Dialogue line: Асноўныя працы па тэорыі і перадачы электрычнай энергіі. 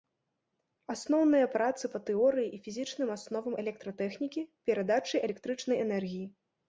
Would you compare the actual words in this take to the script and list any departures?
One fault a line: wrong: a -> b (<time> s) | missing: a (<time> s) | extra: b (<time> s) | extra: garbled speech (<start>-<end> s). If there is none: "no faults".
extra: фізічным асновам электратэхнікі (2.7 s)